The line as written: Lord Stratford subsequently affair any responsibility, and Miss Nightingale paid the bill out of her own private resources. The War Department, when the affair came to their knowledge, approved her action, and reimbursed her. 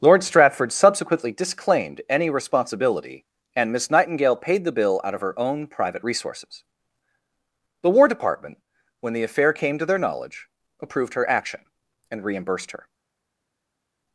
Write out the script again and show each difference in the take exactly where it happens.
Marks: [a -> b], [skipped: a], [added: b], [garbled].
Lord Stratford subsequently [affair -> disclaimed] any responsibility, and Miss Nightingale paid the bill out of her own private resources. The War Department, when the affair came to their knowledge, approved her action, and reimbursed her.